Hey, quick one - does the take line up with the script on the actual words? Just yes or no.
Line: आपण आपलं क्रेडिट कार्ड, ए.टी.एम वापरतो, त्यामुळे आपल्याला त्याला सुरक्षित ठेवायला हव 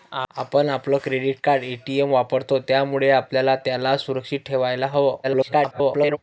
no